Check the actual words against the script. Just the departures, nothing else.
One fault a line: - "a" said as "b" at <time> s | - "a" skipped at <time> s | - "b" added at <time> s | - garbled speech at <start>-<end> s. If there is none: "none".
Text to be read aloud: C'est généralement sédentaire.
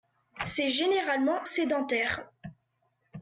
none